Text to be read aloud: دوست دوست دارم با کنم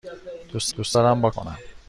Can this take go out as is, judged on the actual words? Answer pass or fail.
pass